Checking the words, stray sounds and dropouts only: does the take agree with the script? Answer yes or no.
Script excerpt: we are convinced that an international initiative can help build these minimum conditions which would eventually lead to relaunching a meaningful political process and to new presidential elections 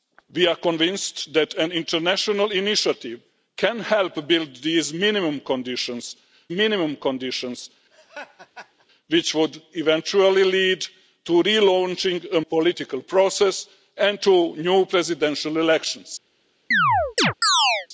no